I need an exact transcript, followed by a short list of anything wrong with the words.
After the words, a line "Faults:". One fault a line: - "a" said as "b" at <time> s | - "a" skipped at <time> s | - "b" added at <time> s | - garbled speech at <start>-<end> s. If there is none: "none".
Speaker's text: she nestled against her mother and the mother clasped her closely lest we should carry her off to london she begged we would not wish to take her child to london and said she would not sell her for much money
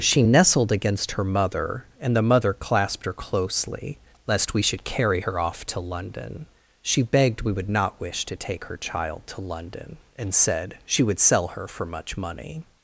she nestled against her mother and the mother clasped her closely lest we should carry her off to london she begged we would not wish to take her child to london and said she would sell her for much money
Faults:
- "not" skipped at 11.2 s